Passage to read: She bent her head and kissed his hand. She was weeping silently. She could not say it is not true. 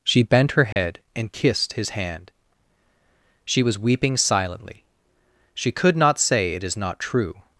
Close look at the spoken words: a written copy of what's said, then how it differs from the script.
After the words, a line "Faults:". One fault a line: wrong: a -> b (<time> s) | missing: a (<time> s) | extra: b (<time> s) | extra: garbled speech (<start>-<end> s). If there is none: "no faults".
She bent her head and kissed his hand. She was weeping silently. She could not say it is not true.
Faults:
no faults